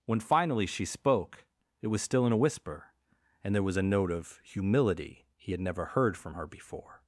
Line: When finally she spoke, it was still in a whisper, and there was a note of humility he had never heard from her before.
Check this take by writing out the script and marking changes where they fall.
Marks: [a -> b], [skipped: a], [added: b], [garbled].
When finally she spoke, it was still in a whisper, and there was a note of humility he had never heard from her before.